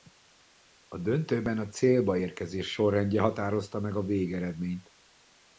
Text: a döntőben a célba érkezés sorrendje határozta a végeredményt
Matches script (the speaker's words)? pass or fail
fail